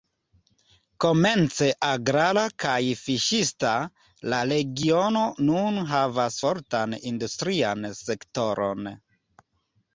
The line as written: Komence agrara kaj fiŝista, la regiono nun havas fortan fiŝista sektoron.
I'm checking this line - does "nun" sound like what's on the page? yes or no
yes